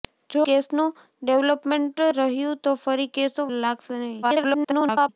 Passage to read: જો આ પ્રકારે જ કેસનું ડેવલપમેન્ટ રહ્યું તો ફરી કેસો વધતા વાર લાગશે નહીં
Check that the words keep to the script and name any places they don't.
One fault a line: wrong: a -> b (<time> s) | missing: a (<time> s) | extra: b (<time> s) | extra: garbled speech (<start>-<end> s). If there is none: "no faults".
missing: આ પ્રકારે જ (0.4 s)
missing: વધતા વાર (3.5 s)
extra: garbled speech (4.2-5.1 s)